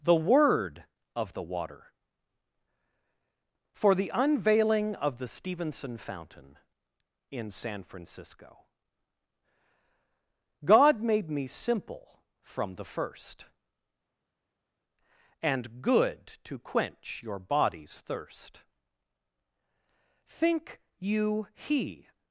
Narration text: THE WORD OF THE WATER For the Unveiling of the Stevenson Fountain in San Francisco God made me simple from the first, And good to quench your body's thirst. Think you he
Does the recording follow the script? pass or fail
pass